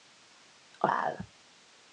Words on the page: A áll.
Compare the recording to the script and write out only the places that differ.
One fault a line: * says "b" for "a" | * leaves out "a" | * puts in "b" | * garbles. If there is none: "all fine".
all fine